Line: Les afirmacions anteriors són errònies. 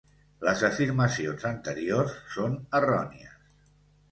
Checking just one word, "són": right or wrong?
right